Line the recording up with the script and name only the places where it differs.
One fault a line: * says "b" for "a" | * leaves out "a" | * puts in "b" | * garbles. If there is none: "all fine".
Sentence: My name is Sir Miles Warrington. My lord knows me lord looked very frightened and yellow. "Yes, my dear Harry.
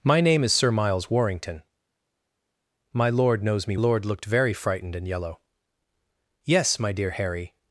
all fine